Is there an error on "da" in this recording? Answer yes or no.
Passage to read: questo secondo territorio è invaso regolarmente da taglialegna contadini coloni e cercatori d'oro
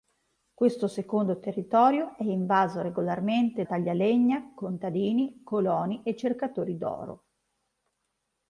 yes